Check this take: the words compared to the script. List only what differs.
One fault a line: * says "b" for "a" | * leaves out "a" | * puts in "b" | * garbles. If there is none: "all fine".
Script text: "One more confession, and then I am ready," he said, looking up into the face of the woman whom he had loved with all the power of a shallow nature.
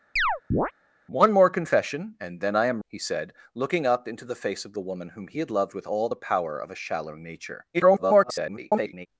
* leaves out "ready"
* garbles